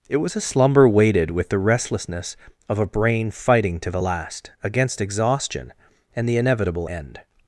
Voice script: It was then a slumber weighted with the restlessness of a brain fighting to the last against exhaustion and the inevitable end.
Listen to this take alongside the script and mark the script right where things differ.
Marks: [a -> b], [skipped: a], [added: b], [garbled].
It was [skipped: then] a slumber weighted with the restlessness of a brain fighting to the last against exhaustion and the inevitable end.